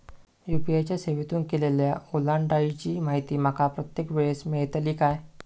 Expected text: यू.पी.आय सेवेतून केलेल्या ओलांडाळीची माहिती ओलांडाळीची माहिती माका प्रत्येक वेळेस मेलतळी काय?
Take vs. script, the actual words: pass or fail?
fail